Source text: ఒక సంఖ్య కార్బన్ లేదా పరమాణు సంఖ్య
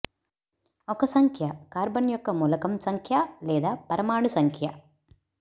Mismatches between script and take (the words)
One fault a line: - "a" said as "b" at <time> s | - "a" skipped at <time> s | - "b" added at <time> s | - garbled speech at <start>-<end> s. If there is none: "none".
- "యొక్క మూలకం సంఖ్య" added at 2.1 s